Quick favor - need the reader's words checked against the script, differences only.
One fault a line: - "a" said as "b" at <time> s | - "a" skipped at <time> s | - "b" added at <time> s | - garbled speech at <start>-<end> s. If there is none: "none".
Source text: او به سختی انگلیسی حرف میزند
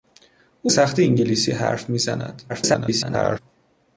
- "به" skipped at 0.7 s
- garbled speech at 2.5-3.4 s